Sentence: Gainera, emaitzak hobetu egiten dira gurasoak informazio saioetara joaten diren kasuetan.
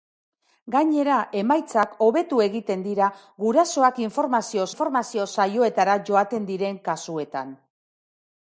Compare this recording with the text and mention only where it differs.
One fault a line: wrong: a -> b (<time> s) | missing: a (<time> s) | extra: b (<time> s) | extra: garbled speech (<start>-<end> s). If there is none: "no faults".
extra: informazio (4.7 s)